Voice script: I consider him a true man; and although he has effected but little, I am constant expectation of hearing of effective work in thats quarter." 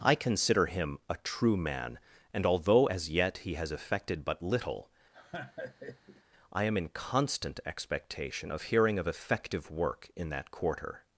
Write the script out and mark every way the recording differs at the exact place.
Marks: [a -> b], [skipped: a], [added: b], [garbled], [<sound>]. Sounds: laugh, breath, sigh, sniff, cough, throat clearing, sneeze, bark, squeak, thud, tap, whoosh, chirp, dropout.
I consider him a true man; and although [added: as yet] he has effected but little, [laugh] I am [added: in] constant expectation of hearing of effective work in [thats -> that] quarter."